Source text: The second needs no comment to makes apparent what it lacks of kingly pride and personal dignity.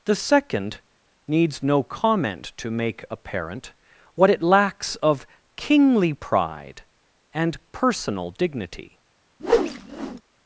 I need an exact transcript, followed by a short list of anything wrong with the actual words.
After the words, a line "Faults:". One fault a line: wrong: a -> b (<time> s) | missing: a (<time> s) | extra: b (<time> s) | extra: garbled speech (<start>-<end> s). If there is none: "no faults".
The second needs no comment to make apparent what it lacks of kingly pride and personal dignity.
Faults:
wrong: makes -> make (2.7 s)